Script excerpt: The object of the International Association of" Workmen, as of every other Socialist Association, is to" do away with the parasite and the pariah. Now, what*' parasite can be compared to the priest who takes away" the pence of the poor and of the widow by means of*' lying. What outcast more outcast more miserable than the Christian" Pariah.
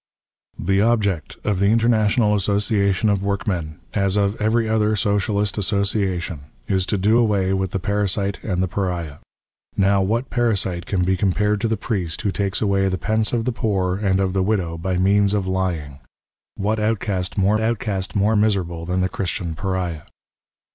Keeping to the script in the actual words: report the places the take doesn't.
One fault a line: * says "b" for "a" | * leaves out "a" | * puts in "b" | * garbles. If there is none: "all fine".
all fine